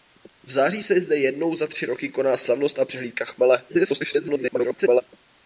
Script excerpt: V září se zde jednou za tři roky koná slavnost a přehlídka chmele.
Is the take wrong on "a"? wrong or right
right